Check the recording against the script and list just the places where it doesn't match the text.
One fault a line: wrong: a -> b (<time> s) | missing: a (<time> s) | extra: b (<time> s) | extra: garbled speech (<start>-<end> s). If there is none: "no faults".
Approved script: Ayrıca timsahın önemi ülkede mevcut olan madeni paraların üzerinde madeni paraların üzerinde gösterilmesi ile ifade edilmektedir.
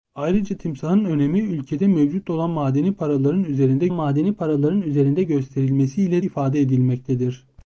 no faults